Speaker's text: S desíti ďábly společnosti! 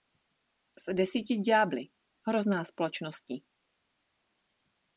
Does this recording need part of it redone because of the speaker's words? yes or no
yes